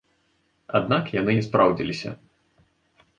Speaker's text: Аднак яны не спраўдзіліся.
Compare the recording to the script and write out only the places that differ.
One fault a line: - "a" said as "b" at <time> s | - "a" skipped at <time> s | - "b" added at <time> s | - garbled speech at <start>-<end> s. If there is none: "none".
none